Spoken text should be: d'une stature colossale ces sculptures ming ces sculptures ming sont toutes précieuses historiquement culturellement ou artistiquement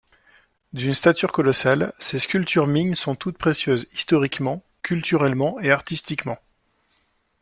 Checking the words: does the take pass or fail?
fail